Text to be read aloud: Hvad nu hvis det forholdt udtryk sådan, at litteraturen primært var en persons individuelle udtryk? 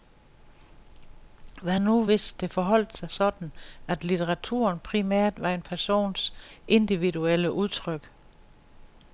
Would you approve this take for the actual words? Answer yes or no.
no